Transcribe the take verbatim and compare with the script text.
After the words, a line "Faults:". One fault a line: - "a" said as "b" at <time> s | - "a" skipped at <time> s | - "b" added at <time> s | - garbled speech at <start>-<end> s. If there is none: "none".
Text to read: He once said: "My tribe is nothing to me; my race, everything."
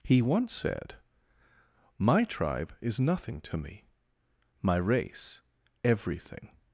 He once said: "My tribe is nothing to me; my race, everything."
Faults:
none